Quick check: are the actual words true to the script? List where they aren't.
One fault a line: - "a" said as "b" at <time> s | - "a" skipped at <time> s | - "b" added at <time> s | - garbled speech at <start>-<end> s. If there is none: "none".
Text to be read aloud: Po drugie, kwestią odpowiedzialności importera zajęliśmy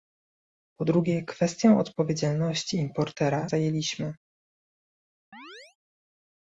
none